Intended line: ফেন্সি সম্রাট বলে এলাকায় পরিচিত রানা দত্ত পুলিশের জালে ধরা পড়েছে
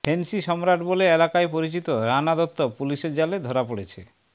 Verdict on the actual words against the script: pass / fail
pass